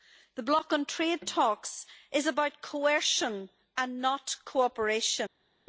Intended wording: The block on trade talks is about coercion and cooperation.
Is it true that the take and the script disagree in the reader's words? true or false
true